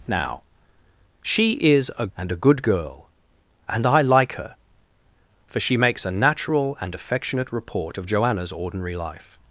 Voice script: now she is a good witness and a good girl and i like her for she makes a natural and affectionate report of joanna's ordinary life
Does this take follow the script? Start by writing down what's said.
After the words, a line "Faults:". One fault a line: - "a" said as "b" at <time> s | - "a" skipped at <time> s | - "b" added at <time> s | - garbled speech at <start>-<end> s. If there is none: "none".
now she is a and a good girl and i like her for she makes a natural and affectionate report of joanna's ordinary life
Faults:
- "good witness" skipped at 2.1 s